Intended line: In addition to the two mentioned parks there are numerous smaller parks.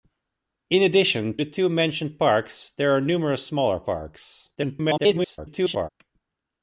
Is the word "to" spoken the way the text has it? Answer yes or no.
no